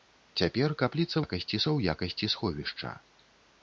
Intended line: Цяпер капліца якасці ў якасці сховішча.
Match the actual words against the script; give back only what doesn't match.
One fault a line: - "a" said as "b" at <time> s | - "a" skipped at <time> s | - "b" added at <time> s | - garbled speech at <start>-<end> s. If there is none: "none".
none